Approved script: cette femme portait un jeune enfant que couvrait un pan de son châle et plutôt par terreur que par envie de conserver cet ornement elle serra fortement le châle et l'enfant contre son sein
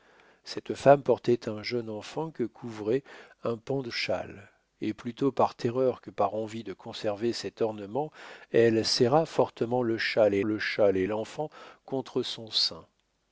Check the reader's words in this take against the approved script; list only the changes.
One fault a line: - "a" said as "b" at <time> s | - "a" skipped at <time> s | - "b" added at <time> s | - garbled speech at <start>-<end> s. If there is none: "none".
- "son" skipped at 3.9 s
- "le châle et" added at 10.4 s